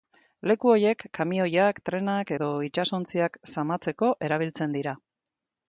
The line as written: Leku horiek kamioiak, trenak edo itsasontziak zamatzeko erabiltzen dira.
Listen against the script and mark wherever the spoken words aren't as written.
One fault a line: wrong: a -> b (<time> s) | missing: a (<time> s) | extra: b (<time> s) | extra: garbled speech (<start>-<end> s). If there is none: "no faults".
no faults